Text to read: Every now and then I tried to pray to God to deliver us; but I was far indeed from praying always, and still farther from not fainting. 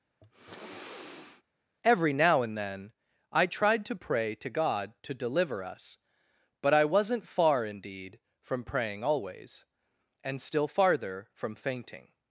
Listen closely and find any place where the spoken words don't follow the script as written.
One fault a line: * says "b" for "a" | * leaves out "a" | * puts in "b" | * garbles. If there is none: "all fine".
* says "wasn't" for "was"
* leaves out "not"